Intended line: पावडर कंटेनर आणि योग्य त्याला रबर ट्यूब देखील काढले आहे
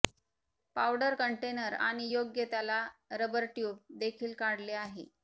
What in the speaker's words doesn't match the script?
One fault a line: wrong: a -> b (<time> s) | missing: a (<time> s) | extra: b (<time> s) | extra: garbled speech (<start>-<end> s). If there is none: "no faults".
no faults